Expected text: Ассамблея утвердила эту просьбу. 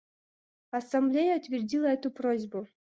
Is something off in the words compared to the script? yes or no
no